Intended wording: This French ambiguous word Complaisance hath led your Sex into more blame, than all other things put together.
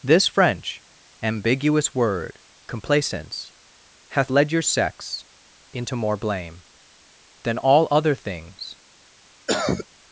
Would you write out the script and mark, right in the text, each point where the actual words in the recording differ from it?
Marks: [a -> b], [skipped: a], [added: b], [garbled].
This French ambiguous word Complaisance hath led your Sex into more blame, than all other things [skipped: put together.]